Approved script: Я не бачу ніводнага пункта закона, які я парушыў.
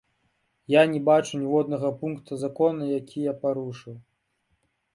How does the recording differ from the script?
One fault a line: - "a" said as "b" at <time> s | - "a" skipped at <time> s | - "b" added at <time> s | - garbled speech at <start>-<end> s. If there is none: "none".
none